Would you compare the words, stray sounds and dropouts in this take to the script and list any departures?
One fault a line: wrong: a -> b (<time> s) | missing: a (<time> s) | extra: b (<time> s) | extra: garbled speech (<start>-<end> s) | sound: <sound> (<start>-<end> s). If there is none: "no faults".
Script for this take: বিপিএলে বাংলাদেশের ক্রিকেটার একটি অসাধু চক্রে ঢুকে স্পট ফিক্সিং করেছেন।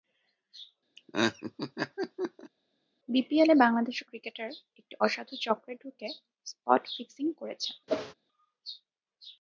sound: laugh (1.0-2.5 s)
sound: whoosh (7.9-8.1 s)